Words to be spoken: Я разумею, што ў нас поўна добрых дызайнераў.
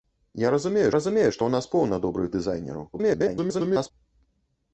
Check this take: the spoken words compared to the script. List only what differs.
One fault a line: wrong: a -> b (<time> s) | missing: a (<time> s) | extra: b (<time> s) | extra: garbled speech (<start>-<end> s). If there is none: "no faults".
extra: разумею (0.9 s)
extra: garbled speech (2.9-3.9 s)